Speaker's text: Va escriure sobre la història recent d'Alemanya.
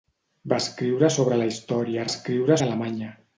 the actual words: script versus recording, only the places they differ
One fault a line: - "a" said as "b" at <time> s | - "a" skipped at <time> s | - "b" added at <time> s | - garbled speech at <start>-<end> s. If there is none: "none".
- "recent" said as "escriure" at 2.1 s